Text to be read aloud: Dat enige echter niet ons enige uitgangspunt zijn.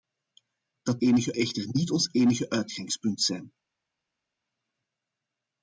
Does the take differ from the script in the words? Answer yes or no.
no